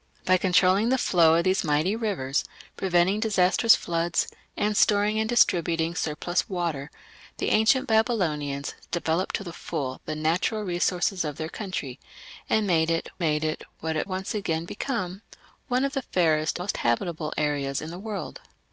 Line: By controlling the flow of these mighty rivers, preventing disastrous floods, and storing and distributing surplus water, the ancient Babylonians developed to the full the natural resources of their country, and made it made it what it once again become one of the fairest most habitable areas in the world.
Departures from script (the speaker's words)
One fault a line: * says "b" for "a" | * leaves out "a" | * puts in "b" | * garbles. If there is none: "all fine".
all fine